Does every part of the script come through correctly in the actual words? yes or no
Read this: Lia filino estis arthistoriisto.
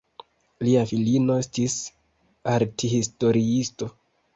yes